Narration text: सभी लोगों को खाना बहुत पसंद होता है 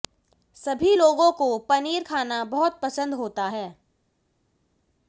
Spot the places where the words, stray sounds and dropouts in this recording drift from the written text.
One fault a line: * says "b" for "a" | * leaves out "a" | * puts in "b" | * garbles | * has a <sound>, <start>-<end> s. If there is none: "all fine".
* puts in "पनीर"